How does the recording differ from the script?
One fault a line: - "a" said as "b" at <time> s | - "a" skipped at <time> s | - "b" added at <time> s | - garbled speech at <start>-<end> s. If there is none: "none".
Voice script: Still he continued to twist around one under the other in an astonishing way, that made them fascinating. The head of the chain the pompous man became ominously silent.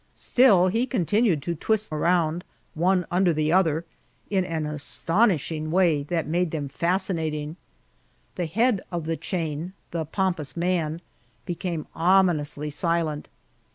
none